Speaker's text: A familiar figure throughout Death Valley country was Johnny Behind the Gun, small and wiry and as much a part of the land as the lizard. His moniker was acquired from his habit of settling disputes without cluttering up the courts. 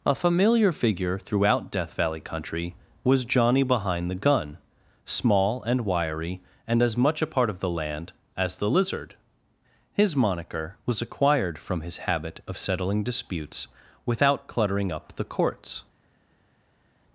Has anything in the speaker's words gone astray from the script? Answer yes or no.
no